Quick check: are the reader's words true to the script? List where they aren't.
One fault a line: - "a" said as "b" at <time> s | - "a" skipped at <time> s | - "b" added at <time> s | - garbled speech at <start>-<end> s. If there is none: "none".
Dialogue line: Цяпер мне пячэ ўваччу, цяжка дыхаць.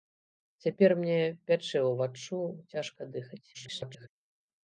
- garbled speech at 3.5-4.1 s